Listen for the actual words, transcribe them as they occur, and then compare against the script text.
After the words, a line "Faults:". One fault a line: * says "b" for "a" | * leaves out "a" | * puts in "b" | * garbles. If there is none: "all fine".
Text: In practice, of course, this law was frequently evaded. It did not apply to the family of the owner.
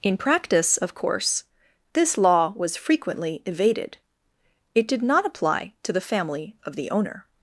In practice, of course, this law was frequently evaded. It did not apply to the family of the owner.
Faults:
all fine